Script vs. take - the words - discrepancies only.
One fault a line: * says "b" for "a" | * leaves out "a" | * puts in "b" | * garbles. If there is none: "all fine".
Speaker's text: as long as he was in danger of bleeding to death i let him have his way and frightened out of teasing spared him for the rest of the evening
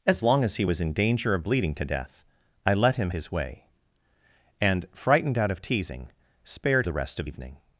* leaves out "have"
* leaves out "him for"
* leaves out "the"